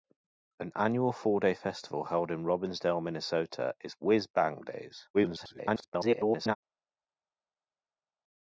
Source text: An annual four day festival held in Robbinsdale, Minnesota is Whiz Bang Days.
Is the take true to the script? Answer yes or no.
no